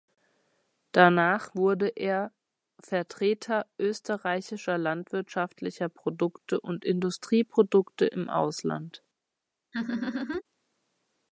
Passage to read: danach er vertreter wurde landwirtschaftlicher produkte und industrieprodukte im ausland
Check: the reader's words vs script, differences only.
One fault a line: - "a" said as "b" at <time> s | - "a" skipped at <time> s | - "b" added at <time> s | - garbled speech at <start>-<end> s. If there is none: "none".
- "wurde" added at 1.5 s
- "wurde" said as "österreichischer" at 3.8 s